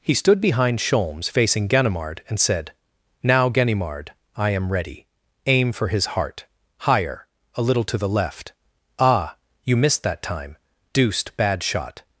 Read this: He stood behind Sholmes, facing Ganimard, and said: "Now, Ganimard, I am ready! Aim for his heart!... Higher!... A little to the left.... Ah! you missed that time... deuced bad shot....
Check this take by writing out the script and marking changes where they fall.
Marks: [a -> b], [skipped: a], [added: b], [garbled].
He stood behind Sholmes, facing Ganimard, and said: "Now, Ganimard, I am ready! Aim for his heart!... Higher!... A little to the left.... Ah! you missed that time... deuced bad shot....